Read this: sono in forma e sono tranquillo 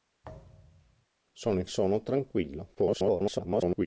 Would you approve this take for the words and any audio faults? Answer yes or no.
no